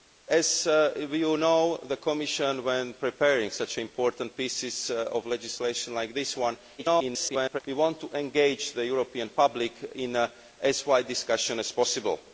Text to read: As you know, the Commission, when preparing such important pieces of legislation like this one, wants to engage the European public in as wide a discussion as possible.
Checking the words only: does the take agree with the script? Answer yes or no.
no